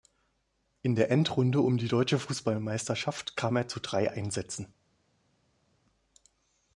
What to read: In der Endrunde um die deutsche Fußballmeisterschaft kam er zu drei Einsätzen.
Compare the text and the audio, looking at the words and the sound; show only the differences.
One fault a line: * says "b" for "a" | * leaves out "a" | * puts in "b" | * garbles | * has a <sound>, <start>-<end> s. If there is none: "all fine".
all fine